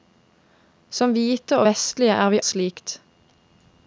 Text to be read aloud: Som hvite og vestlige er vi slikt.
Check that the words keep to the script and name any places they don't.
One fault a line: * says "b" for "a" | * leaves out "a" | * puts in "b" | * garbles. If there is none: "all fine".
all fine